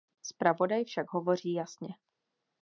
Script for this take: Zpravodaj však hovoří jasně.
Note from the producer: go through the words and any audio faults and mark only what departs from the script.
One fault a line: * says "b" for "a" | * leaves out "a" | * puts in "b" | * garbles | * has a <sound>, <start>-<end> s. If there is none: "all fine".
all fine